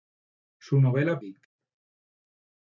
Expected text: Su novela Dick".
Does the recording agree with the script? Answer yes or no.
yes